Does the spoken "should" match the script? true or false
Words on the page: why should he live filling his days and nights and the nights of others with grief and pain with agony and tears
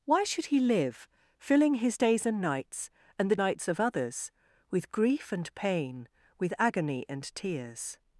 true